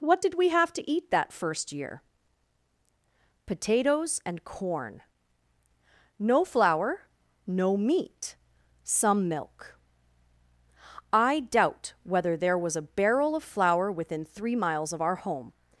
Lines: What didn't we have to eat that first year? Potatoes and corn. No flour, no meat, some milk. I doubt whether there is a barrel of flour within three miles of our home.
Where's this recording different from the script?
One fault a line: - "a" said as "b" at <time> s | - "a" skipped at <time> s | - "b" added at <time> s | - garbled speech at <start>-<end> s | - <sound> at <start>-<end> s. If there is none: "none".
- "didn't" said as "did" at 0.2 s
- "is" said as "was" at 12.6 s